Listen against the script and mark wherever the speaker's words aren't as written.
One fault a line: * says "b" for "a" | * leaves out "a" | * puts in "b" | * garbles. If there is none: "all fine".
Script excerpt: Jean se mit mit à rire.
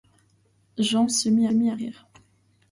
all fine